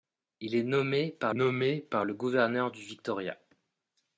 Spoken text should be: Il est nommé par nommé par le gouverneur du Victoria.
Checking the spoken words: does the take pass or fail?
pass